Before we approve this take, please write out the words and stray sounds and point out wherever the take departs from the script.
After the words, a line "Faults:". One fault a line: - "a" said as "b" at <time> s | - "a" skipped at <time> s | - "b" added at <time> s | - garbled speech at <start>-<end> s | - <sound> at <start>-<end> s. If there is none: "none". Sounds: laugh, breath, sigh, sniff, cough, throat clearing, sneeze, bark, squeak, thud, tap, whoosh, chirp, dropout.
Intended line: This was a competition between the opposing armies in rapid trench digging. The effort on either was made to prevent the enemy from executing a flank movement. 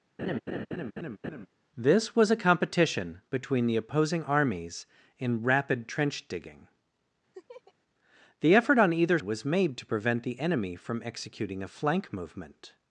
This was a competition between the opposing armies in rapid trench digging. The effort on either was made to prevent the enemy from executing a flank movement.
Faults:
- laugh at 0.2-1.5 s
- laugh at 7.3-7.7 s